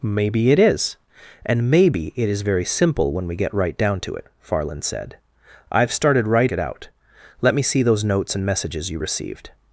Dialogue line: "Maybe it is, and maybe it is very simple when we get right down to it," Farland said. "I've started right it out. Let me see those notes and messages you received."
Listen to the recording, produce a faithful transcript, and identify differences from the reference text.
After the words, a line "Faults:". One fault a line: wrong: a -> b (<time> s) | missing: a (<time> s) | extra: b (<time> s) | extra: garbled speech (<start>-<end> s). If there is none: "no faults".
"Maybe it is, and maybe it is very simple when we get right down to it," Farland said. "I've started right it out. Let me see those notes and messages you received."
Faults:
no faults